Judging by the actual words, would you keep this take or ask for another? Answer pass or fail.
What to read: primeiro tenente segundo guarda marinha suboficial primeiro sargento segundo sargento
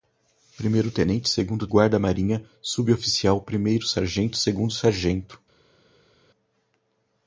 pass